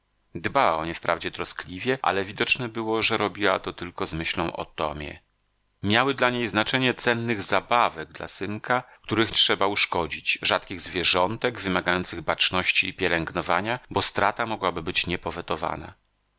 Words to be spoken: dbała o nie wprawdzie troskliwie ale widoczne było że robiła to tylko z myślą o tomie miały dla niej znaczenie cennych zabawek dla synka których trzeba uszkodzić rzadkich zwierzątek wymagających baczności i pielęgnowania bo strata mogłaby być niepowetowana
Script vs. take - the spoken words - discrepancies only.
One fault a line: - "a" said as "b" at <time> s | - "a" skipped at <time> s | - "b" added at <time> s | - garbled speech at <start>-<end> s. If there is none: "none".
none